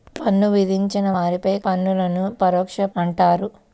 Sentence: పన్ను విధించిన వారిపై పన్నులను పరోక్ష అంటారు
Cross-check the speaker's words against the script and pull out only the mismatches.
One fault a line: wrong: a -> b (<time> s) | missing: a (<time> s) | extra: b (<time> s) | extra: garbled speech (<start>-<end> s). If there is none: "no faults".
no faults